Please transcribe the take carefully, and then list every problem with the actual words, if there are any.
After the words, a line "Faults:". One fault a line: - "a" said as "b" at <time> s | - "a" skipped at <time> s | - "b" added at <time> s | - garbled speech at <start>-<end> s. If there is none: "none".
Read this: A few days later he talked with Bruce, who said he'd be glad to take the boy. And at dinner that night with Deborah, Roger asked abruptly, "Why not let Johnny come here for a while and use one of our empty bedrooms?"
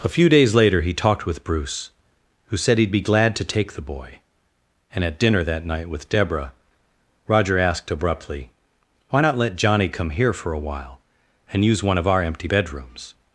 A few days later he talked with Bruce, who said he'd be glad to take the boy. And at dinner that night with Deborah, Roger asked abruptly, "Why not let Johnny come here for a while and use one of our empty bedrooms?"
Faults:
none